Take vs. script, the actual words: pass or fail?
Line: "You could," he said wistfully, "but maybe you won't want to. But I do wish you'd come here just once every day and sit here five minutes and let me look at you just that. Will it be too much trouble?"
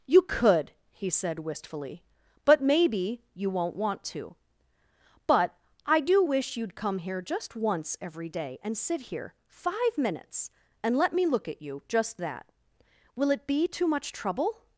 pass